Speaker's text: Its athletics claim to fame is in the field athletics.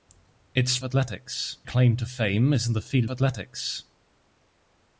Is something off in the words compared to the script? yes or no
no